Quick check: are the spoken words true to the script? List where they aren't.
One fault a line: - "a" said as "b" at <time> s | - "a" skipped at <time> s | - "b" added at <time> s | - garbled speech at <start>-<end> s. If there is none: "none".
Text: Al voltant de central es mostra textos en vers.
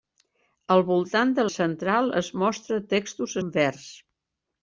none